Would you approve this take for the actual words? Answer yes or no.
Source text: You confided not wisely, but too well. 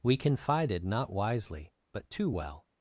no